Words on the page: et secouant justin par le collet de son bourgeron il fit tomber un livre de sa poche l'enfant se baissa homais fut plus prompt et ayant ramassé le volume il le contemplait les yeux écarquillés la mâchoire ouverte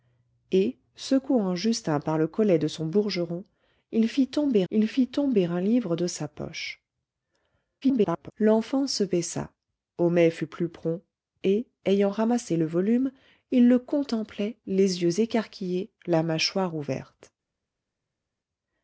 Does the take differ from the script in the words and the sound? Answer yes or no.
yes